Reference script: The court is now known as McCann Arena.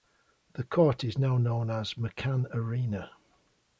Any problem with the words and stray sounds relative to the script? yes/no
no